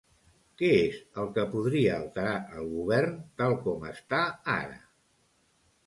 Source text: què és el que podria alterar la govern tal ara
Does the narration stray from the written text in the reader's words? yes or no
yes